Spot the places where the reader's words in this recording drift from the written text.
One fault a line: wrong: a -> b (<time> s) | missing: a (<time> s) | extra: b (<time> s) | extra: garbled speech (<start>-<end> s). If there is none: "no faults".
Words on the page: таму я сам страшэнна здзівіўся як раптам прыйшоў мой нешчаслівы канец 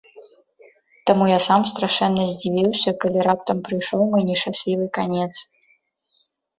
wrong: як -> калі (3.0 s)